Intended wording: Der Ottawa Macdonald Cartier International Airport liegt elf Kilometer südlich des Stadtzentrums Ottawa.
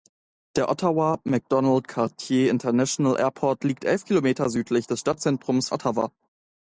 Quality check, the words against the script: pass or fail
pass